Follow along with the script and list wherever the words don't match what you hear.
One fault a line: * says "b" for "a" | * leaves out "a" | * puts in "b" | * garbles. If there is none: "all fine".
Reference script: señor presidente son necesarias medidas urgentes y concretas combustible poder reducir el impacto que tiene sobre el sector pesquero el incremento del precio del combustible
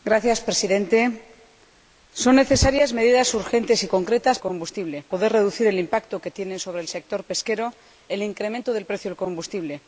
all fine